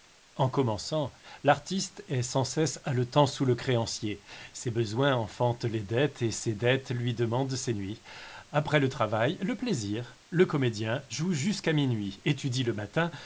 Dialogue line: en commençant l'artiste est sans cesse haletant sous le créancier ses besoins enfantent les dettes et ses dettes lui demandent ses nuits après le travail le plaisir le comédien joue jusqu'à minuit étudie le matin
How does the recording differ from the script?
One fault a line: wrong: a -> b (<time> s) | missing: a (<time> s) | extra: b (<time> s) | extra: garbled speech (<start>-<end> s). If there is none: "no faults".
no faults